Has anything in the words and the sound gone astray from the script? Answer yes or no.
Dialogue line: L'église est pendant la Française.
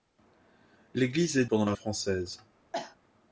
yes